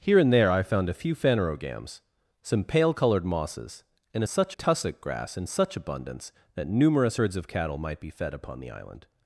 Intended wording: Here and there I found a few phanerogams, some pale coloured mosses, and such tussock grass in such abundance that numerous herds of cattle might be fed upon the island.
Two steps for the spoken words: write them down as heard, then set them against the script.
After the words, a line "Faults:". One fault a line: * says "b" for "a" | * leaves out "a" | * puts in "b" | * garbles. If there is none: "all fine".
Here and there I found a few phanerogams, some pale coloured mosses, and such tussock grass in such abundance that numerous herds of cattle might be fed upon the island.
Faults:
all fine